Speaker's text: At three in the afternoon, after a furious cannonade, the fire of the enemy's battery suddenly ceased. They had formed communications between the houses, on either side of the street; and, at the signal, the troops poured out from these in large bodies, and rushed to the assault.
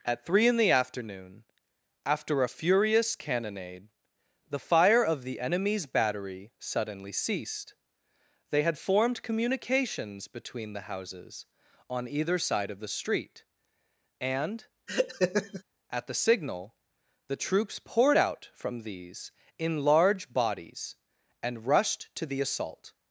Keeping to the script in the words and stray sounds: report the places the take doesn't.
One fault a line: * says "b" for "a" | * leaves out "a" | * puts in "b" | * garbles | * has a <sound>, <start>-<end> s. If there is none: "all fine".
* has a laugh, 14.9-15.6 s